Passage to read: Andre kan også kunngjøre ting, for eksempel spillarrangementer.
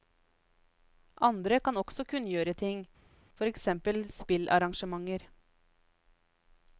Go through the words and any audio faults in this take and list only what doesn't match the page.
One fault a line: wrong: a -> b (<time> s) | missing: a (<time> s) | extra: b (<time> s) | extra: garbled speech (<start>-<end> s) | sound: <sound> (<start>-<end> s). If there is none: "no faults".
no faults